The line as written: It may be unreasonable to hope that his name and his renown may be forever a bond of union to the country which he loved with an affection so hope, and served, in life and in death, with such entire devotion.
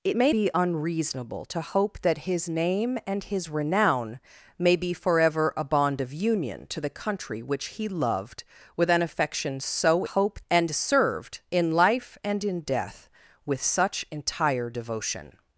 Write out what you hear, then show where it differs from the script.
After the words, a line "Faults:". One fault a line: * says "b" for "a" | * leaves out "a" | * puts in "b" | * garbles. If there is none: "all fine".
It may be unreasonable to hope that his name and his renown may be forever a bond of union to the country which he loved with an affection so hope, and served, in life and in death, with such entire devotion.
Faults:
all fine